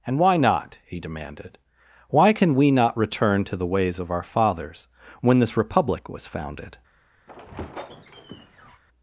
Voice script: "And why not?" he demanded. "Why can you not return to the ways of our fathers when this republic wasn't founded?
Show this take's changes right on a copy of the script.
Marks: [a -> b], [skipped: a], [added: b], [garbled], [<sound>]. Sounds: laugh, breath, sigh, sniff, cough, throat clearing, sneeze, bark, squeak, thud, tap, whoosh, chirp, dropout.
"And why not?" he demanded. "Why can [you -> we] not return to the ways of our fathers when this republic [wasn't -> was] founded? [squeak]